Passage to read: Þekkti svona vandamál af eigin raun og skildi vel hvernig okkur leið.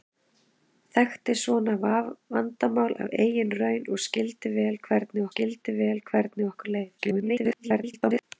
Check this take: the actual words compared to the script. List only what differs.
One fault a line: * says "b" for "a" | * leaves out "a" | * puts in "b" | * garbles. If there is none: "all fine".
* puts in "skildi vel hvernig"
* garbles